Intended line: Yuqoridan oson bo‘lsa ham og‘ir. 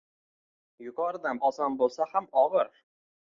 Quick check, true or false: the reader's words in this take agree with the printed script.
true